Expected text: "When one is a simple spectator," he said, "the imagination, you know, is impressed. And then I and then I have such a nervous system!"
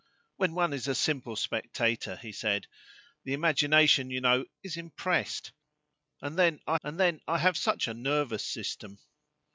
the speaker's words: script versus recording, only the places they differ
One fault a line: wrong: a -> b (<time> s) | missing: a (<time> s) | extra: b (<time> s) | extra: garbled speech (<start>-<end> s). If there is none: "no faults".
no faults